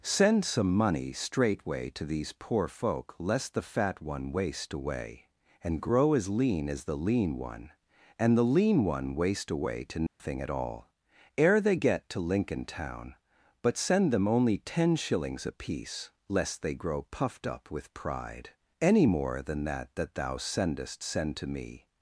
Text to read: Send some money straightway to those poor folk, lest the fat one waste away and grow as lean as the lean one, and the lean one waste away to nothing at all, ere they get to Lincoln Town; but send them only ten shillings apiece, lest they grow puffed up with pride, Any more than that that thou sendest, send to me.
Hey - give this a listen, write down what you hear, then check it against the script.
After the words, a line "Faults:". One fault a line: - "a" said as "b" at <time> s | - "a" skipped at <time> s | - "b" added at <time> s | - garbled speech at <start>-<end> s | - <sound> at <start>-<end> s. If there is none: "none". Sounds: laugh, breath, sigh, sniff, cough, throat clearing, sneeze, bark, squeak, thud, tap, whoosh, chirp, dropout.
Send some money straightway to these poor folk, lest the fat one waste away and grow as lean as the lean one, and the lean one waste away to nothing at all, ere they get to Lincoln Town; but send them only ten shillings apiece, lest they grow puffed up with pride, Any more than that that thou sendest, send to me.
Faults:
- "those" said as "these" at 2.0 s
- dropout at 10.1-10.2 s